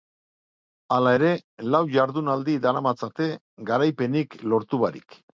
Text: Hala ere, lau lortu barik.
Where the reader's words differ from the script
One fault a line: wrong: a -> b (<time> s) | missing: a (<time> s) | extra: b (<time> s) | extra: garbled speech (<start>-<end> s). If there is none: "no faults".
extra: jardunaldi daramatzate garaipenik (2.0 s)